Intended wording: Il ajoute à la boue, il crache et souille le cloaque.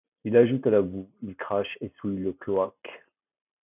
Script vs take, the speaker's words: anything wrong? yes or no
no